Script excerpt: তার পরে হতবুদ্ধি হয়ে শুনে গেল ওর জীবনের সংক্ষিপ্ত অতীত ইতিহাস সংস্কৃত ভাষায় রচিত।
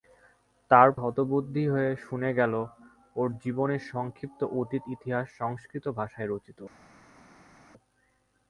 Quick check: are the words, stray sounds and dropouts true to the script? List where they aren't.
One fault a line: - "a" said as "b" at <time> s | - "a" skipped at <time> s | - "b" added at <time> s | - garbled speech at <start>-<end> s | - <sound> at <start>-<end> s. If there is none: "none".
- "পরে" skipped at 0.9 s